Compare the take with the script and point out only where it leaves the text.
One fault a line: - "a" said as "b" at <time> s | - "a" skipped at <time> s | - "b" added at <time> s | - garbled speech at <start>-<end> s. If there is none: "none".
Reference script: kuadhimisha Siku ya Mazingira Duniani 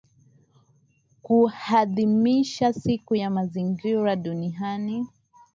none